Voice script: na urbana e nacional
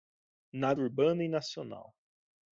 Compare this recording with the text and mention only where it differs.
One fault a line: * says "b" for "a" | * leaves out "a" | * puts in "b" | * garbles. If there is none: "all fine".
all fine